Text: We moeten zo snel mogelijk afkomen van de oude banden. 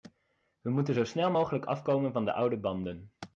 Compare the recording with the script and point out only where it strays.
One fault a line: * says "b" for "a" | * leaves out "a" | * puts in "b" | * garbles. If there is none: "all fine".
all fine